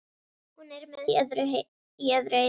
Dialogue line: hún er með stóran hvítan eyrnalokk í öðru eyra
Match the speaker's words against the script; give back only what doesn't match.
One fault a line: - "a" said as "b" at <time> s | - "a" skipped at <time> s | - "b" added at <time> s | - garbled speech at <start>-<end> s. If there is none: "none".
- "stóran hvítan eyrnalokk" skipped at 1.0 s